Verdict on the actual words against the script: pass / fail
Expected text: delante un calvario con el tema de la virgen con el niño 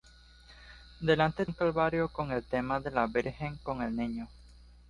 pass